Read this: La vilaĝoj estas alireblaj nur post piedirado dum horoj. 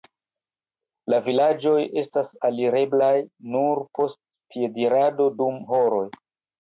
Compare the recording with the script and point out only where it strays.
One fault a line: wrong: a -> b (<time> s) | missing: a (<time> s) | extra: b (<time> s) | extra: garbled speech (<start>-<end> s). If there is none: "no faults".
no faults